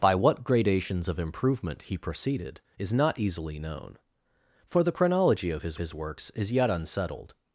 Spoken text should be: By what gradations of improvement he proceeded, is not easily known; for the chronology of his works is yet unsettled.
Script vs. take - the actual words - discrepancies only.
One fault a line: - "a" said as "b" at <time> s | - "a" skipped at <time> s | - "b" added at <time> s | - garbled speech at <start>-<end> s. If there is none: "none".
- "his" added at 5.8 s